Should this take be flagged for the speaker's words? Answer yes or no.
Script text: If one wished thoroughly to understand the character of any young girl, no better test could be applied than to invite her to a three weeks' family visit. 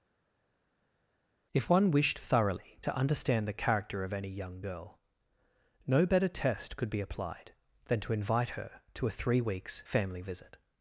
no